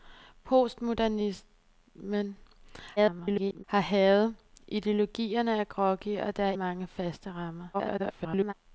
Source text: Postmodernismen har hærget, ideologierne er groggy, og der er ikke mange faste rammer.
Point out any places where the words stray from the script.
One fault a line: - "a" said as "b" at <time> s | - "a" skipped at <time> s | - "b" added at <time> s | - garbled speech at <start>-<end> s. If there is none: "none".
- garbled speech at 3.0-3.6 s
- "ikke" skipped at 6.5 s
- garbled speech at 7.7-8.5 s